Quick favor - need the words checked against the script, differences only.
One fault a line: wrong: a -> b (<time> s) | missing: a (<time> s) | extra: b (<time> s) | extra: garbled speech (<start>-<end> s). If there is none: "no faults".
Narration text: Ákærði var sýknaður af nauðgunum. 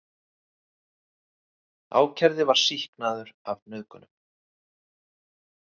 no faults